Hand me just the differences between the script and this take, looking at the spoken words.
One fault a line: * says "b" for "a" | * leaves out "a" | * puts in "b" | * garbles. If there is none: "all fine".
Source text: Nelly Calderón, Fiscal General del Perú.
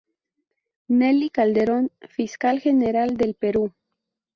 all fine